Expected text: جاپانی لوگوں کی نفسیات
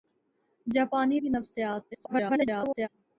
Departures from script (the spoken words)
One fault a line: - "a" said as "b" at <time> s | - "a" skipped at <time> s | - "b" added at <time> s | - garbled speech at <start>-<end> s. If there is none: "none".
- "لوگوں" skipped at 1.2 s
- garbled speech at 1.9-2.9 s